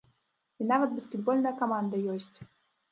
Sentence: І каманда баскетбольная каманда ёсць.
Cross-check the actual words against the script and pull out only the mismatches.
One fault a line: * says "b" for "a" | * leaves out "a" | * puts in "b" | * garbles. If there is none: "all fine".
* says "нават" for "каманда"